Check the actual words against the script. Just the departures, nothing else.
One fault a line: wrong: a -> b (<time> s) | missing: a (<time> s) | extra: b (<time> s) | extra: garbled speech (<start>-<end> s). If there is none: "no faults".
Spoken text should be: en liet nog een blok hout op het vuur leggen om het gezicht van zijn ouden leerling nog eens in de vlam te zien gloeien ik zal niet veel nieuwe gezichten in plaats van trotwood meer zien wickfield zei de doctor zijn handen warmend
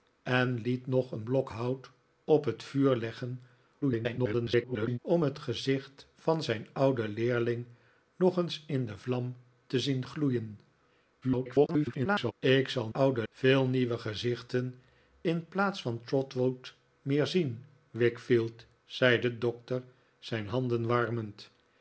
extra: garbled speech (3.8-5.0 s)
extra: garbled speech (11.2-12.3 s)
wrong: niet -> ouden (12.9 s)